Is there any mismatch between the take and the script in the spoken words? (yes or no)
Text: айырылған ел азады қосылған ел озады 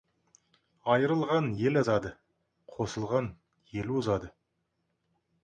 no